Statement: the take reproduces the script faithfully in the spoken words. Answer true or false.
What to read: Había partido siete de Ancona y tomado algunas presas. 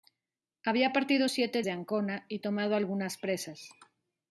true